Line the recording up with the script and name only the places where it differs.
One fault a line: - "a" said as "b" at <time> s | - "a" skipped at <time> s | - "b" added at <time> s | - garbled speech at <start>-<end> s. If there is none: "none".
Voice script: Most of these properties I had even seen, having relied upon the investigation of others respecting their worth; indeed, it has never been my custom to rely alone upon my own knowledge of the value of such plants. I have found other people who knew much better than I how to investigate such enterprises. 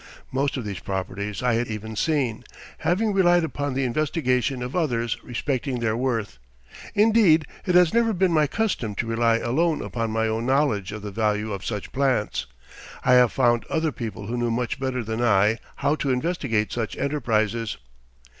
none